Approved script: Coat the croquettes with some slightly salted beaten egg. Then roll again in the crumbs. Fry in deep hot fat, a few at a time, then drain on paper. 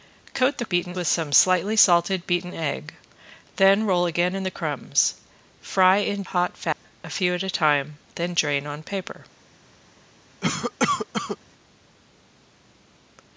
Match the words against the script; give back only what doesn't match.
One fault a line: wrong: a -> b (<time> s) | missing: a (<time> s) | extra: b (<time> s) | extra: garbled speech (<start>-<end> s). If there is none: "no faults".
wrong: croquettes -> beaten (0.7 s)
missing: deep (6.2 s)